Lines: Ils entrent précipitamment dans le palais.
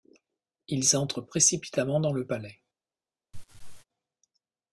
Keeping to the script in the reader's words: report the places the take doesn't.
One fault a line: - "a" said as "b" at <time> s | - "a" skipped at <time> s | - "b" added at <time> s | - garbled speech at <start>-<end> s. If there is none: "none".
none